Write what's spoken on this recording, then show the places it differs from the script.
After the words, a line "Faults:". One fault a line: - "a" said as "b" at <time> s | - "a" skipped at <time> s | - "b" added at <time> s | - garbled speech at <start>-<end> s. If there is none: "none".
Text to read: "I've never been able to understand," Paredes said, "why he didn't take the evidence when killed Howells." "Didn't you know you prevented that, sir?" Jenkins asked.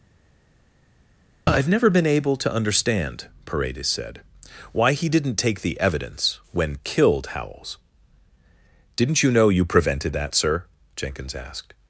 "I've never been able to understand," Paredes said, "why he didn't take the evidence when killed Howells." "Didn't you know you prevented that, sir?" Jenkins asked.
Faults:
none